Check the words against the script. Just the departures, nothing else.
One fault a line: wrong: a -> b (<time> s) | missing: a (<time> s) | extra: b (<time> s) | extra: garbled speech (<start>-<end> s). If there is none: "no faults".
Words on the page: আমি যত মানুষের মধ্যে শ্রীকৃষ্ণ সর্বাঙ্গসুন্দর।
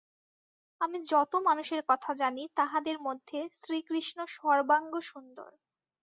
extra: কথা জানি তাহাদের (1.9 s)